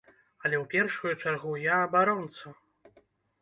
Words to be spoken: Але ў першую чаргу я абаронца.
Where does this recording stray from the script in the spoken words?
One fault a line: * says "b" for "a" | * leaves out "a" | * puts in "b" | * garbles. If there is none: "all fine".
all fine